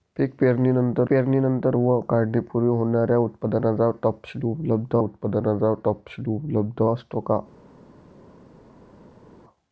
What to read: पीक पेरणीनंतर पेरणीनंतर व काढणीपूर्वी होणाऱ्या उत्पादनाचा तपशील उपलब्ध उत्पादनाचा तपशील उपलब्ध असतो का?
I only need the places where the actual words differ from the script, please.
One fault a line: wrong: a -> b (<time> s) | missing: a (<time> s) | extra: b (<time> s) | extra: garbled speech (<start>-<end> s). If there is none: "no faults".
no faults